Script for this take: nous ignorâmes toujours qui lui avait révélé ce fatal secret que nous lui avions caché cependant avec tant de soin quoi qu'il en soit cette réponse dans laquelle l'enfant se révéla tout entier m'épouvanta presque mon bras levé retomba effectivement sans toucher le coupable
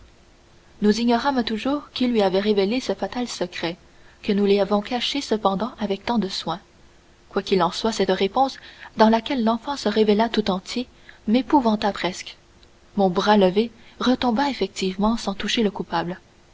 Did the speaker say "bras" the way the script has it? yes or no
yes